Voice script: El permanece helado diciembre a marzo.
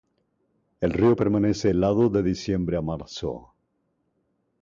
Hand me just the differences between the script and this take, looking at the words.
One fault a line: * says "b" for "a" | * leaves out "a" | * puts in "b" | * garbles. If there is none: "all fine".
* puts in "río"
* puts in "de"